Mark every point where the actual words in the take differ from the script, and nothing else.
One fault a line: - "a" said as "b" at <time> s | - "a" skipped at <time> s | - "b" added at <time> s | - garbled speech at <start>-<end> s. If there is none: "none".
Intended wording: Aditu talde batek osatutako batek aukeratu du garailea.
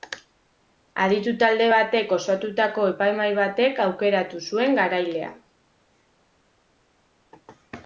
- "epaimahai" added at 2.9 s
- "du" said as "zuen" at 4.5 s